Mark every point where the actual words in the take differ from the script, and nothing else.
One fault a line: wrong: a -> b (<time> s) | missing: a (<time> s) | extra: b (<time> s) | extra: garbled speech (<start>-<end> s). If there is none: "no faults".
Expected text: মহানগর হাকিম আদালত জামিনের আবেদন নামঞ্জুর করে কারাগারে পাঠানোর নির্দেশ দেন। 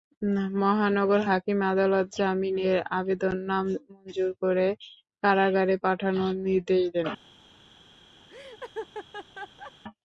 no faults